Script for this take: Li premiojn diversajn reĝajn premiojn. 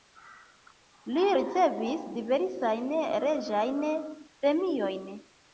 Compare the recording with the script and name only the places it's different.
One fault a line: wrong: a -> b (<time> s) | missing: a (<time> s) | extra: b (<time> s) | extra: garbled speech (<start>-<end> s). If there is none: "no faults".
wrong: premiojn -> ricevis (1.4 s)